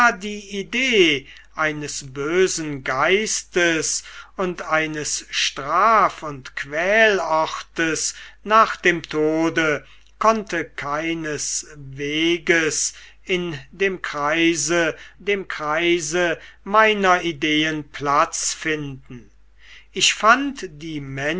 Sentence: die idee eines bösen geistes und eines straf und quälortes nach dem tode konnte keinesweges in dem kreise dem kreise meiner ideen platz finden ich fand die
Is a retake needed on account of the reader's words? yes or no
no